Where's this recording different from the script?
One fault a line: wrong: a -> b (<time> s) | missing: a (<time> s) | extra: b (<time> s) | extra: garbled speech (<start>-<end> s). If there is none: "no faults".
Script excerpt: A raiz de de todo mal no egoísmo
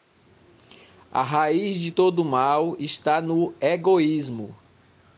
missing: de (1.9 s)
extra: está (2.8 s)